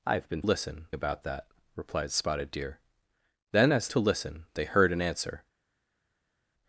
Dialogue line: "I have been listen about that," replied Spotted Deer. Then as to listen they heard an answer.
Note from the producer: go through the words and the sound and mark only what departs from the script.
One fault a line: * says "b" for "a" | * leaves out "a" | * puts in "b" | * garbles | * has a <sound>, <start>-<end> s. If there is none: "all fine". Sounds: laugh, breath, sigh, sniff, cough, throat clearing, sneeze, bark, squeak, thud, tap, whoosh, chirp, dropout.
all fine